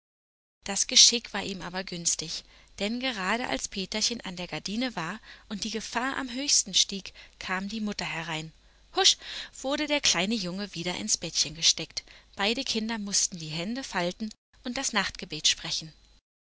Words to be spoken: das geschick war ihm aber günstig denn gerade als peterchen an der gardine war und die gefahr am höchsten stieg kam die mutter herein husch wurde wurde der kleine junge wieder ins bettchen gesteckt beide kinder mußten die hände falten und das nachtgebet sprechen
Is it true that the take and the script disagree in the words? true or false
true